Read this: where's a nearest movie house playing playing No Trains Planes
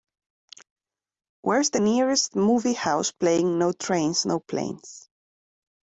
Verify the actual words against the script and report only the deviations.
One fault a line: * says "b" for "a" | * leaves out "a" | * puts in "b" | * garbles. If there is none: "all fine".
* says "the" for "a"
* leaves out "playing"
* puts in "No"